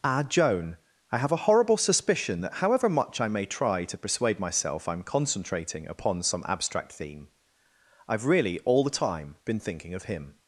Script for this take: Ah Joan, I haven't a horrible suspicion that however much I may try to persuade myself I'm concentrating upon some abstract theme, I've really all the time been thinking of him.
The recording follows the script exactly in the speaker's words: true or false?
false